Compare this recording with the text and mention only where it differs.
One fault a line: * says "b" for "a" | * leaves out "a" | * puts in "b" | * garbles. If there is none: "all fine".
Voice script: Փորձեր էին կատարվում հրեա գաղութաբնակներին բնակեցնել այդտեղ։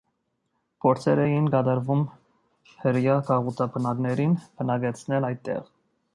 all fine